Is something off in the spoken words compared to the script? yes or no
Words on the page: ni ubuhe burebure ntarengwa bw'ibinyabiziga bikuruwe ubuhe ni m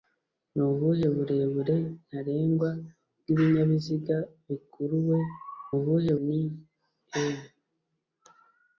no